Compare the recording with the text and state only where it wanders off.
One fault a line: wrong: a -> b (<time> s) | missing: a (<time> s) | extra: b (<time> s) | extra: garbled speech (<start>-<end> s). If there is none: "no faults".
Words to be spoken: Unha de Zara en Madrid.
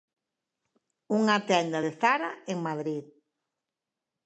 extra: tenda (1.5 s)